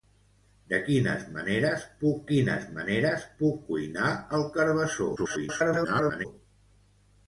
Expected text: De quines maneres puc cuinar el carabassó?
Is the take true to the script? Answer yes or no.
no